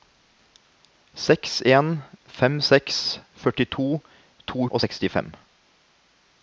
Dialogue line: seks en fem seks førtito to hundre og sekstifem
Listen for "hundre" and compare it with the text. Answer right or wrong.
wrong